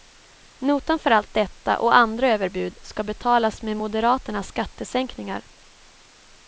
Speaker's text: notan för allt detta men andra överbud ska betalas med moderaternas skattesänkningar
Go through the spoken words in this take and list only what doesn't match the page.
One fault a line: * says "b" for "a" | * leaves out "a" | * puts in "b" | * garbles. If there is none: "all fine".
* says "och" for "men"